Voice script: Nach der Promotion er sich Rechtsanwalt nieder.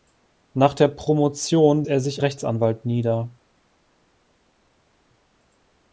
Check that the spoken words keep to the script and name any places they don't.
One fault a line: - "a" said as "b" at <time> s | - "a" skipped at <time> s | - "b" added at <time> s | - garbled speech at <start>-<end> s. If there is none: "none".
none